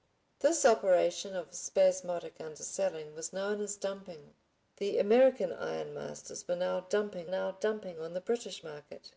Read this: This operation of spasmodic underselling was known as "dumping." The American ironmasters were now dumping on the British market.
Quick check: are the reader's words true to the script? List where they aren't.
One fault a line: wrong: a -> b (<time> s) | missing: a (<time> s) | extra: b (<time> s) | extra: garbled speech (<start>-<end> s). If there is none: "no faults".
extra: now dumping (7.3 s)